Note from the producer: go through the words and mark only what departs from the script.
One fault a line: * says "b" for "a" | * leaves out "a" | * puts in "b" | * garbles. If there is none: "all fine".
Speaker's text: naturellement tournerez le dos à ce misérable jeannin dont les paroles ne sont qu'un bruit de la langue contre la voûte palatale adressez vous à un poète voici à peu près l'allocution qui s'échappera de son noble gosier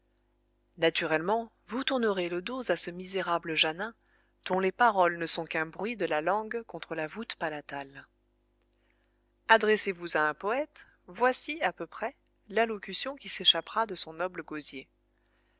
* puts in "vous"